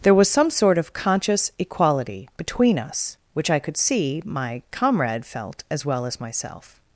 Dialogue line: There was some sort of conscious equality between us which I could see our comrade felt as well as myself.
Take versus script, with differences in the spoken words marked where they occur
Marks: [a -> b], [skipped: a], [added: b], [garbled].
There was some sort of conscious equality between us which I could see [our -> my] comrade felt as well as myself.